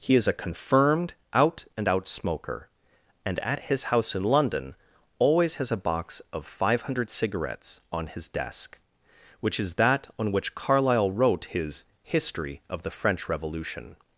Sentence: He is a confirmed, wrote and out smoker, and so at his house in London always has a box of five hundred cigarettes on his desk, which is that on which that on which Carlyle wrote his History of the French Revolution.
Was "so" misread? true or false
true